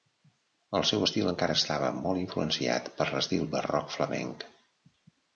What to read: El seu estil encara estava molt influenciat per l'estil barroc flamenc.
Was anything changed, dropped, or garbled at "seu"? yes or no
no